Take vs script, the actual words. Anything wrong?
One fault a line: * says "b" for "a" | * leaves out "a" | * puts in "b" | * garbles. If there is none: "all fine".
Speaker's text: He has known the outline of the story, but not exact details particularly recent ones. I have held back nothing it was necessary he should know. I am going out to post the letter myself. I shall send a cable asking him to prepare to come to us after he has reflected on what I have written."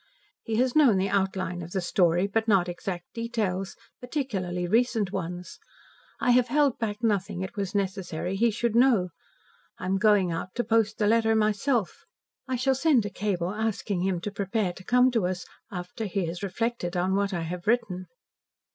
all fine